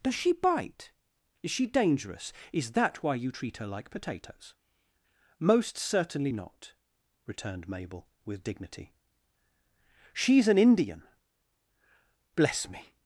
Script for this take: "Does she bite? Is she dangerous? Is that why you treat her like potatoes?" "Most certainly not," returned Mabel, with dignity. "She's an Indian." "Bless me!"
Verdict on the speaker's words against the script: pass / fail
pass